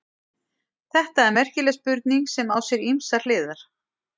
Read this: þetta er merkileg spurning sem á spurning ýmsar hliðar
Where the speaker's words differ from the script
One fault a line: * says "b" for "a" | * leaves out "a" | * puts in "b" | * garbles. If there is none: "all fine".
* says "sér" for "spurning"